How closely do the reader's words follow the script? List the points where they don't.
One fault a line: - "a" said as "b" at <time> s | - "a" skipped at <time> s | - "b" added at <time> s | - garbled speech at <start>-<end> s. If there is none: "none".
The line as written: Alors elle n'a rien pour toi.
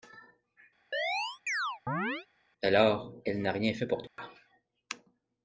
- "fait" added at 3.7 s